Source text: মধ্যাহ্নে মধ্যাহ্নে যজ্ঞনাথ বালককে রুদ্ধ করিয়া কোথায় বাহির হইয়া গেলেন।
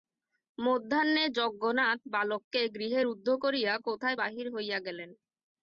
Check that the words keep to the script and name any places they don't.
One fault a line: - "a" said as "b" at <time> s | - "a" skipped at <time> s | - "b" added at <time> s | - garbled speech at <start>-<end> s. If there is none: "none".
- "মধ্যাহ্নে" skipped at 1.2 s
- "গৃহে" added at 2.8 s